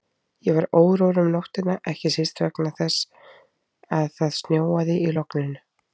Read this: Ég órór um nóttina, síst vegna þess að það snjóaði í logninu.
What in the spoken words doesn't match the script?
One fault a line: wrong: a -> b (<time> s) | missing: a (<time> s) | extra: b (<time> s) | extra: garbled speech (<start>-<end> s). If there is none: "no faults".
extra: var (0.5 s)
extra: ekki (1.9 s)